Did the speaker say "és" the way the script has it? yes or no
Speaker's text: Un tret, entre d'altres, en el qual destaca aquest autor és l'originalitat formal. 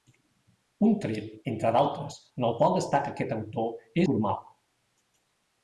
no